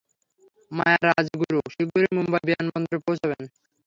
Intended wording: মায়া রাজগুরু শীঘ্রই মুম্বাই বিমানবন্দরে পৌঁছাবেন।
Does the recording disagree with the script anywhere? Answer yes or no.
no